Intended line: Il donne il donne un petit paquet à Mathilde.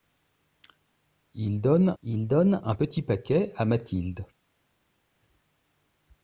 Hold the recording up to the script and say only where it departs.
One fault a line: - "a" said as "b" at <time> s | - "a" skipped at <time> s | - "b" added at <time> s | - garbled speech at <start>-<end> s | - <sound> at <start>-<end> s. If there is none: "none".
none